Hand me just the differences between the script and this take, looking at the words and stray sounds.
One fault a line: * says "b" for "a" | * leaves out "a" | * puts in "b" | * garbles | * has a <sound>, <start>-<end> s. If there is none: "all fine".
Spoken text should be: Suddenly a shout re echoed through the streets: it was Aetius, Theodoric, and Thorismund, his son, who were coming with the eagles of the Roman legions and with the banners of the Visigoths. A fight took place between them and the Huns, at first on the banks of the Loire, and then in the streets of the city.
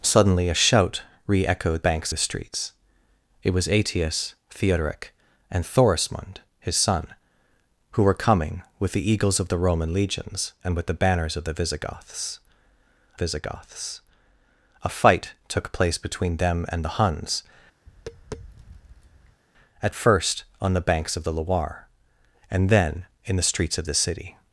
* says "banks" for "through"
* puts in "Visigoths"
* has a tap, 17.9-19.4 s